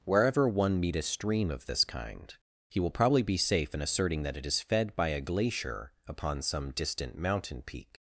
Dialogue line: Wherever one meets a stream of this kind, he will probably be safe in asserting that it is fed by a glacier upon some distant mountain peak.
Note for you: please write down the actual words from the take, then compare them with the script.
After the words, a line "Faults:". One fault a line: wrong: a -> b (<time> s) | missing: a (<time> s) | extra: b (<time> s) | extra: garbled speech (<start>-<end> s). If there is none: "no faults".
Wherever one meet a stream of this kind, he will probably be safe in asserting that it is fed by a glacier upon some distant mountain peak.
Faults:
wrong: meets -> meet (0.8 s)